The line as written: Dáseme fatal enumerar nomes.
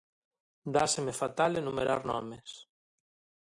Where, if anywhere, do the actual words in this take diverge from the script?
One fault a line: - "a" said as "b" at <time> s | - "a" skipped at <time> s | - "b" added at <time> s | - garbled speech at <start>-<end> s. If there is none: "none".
none